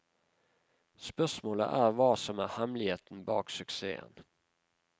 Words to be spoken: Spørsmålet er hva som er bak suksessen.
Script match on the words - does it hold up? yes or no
no